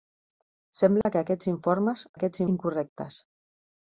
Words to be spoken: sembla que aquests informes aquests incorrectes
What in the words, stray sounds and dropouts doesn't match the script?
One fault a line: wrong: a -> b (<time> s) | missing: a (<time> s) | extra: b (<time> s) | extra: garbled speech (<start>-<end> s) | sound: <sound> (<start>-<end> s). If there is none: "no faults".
sound: dropout (1.0-1.1 s)